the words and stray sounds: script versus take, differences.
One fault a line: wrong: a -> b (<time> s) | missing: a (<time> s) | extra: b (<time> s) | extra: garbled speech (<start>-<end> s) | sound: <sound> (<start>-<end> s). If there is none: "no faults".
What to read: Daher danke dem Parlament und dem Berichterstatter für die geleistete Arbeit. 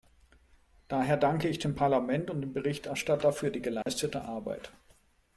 extra: ich (1.5 s)
sound: dropout (3.8-3.9 s)